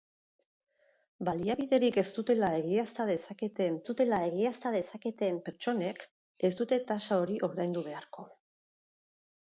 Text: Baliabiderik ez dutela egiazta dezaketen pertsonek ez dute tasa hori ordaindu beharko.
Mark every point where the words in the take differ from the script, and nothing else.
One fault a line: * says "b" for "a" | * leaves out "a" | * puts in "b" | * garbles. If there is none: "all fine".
* puts in "dutela egiazta dezaketen"